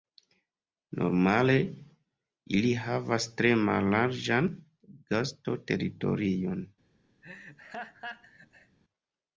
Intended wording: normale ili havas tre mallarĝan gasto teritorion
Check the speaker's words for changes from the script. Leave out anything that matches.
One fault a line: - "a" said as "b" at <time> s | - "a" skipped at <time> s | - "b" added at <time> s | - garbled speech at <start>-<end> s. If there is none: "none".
none